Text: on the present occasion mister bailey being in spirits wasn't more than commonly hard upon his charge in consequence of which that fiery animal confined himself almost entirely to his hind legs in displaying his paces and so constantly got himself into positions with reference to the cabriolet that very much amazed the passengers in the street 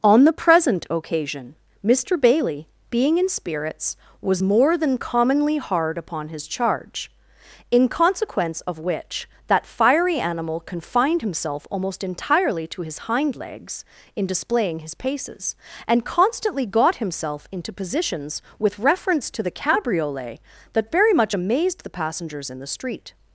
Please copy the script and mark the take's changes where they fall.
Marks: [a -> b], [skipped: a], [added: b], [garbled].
on the present occasion mister bailey being in spirits [wasn't -> was] more than commonly hard upon his charge in consequence of which that fiery animal confined himself almost entirely to his hind legs in displaying his paces and [skipped: so] constantly got himself into positions with reference to the cabriolet that very much amazed the passengers in the street